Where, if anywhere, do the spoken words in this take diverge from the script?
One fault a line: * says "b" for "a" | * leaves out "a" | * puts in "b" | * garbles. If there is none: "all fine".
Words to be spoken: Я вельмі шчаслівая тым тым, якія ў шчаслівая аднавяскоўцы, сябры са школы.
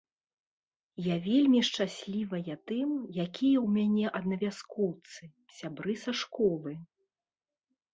* leaves out "тым"
* says "мяне" for "шчаслівая"